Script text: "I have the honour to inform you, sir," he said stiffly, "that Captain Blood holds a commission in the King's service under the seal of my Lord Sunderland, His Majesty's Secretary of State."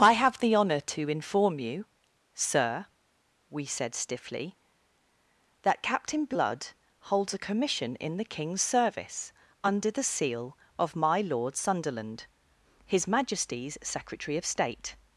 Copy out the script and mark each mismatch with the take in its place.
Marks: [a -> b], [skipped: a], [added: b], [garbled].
"I have the honour to inform you, sir," [he -> we] said stiffly, "that Captain Blood holds a commission in the King's service under the seal of my Lord Sunderland, His Majesty's Secretary of State."